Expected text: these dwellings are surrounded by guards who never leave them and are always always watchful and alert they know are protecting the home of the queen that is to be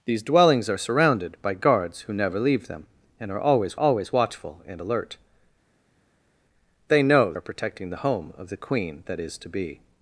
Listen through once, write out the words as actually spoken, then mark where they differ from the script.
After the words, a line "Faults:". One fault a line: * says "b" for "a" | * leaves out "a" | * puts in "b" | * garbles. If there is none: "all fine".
these dwellings are surrounded by guards who never leave them and are always always watchful and alert they know are protecting the home of the queen that is to be
Faults:
all fine